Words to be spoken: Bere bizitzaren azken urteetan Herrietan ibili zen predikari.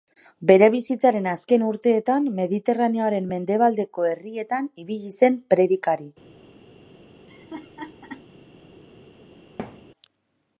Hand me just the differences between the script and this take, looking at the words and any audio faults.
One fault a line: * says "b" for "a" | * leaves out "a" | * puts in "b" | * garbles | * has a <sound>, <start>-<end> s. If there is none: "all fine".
* puts in "Mediterraneoaren mendebaldeko"
* has a laugh, 7.3-8.3 s
* has a thud, 9.6-9.9 s